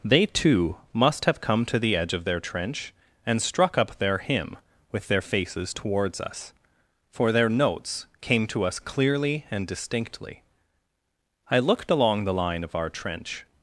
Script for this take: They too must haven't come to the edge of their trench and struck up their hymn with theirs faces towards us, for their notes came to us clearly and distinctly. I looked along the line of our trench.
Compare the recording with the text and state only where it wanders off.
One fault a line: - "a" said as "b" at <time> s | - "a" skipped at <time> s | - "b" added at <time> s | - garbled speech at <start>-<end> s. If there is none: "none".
- "haven't" said as "have" at 1.2 s
- "theirs" said as "their" at 5.1 s